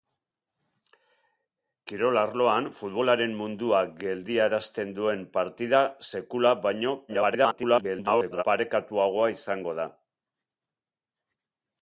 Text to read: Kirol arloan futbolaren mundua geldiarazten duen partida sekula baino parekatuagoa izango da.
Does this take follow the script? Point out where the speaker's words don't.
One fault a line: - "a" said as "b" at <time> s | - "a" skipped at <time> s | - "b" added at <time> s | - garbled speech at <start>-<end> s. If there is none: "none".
- garbled speech at 7.1-8.4 s